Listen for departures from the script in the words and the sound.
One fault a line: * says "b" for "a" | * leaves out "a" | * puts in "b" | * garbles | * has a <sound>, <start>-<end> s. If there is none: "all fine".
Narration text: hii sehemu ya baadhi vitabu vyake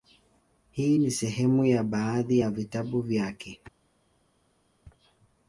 * puts in "ni"
* puts in "ya"